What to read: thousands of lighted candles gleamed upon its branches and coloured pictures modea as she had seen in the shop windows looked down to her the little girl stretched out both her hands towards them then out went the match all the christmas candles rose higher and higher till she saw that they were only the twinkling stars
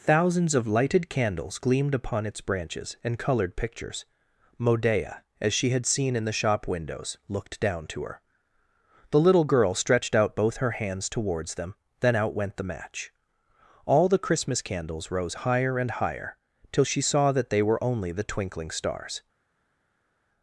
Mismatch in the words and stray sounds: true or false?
false